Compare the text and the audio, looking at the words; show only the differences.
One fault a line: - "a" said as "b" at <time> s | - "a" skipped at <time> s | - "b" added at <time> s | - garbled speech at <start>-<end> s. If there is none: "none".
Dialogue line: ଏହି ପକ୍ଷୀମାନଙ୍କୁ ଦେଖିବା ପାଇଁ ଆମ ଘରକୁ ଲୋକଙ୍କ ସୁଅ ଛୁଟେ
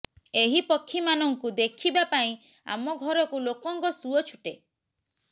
none